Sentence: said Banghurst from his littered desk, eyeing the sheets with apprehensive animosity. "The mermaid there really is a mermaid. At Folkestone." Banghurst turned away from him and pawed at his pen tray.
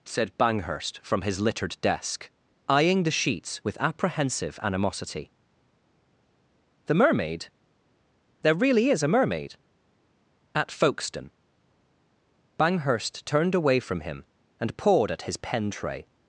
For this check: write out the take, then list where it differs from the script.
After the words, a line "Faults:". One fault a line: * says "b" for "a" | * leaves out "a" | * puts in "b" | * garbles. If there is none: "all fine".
said Banghurst from his littered desk, eyeing the sheets with apprehensive animosity. "The mermaid there really is a mermaid. At Folkestone." Banghurst turned away from him and pawed at his pen tray.
Faults:
all fine